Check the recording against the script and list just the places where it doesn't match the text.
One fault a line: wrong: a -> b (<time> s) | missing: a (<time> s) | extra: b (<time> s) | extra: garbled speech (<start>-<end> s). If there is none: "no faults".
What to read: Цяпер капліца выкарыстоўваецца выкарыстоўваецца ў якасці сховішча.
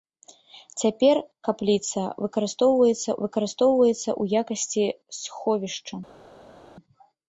no faults